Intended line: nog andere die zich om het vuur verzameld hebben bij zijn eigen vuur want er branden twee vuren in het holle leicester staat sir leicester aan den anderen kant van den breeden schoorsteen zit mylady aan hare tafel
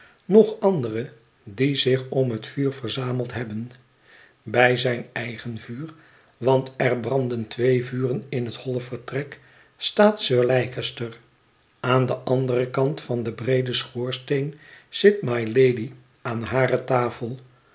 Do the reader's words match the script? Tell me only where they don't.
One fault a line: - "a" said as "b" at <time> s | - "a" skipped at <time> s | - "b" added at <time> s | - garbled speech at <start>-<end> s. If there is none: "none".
- "leicester" said as "vertrek" at 8.8 s